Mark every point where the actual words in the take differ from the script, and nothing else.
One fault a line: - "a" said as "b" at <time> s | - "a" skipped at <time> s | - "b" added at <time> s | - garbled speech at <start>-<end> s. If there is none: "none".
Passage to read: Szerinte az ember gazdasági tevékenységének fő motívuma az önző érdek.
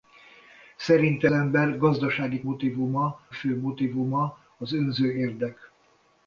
- "az" skipped at 1.3 s
- "tevékenységének" said as "motívuma" at 2.4 s